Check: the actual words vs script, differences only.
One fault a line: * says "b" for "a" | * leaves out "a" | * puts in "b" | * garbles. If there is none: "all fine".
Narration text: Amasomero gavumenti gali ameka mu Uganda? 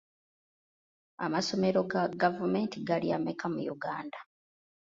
* puts in "ga"